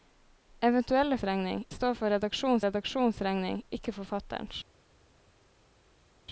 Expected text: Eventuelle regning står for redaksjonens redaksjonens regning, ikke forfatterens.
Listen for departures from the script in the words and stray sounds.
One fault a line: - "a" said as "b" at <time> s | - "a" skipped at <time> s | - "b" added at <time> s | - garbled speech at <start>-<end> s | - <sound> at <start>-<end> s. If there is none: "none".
none